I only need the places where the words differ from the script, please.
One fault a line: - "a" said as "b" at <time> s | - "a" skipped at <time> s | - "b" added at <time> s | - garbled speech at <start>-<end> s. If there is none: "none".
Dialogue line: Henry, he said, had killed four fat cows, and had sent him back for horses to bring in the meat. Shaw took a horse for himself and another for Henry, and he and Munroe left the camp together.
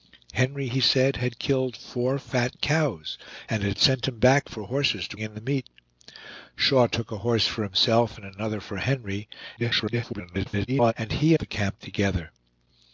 - "bring" skipped at 5.2 s
- garbled speech at 9.6-10.9 s
- "and Munroe left" skipped at 11.3 s